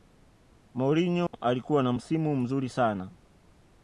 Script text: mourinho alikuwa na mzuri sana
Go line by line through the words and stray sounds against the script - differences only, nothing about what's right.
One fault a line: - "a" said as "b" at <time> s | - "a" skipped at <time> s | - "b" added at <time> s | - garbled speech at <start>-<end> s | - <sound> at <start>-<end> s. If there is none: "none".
- dropout at 1.3-1.3 s
- "msimu" added at 1.9 s